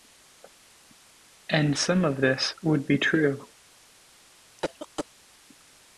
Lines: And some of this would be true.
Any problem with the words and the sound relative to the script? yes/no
yes